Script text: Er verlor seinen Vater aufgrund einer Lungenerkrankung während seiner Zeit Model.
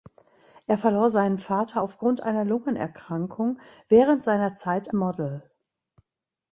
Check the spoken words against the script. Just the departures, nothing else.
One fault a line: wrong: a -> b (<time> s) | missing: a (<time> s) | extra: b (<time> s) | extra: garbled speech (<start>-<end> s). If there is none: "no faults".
no faults